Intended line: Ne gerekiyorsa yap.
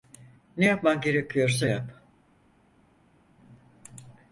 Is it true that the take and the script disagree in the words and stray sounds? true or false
true